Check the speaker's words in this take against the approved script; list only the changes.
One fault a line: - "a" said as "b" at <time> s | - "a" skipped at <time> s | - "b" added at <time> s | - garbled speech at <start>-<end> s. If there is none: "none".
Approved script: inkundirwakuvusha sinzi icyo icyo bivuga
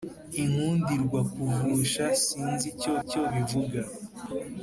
none